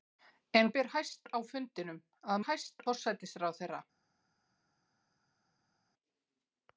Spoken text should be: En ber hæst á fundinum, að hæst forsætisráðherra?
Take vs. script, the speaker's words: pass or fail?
pass